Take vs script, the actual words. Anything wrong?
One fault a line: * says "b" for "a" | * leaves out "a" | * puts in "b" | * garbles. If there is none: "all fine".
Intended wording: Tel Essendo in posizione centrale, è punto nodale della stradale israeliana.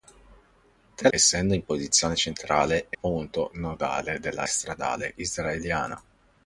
all fine